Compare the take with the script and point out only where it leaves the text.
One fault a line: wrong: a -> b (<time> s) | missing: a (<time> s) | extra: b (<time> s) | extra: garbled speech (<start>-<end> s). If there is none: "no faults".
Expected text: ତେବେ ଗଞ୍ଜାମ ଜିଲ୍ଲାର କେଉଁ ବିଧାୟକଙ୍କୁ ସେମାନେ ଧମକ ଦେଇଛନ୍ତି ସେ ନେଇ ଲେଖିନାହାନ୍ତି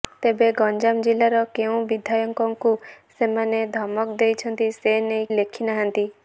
no faults